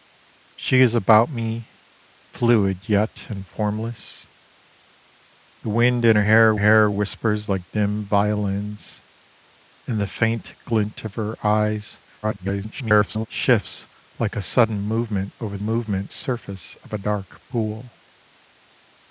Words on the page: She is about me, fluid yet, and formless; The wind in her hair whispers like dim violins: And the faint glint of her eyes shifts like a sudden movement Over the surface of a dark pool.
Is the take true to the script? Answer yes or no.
no